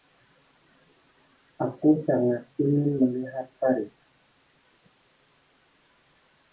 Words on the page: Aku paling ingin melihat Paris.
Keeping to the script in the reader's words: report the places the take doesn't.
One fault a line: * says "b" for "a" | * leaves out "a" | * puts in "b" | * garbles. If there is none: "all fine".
* says "sangat" for "paling"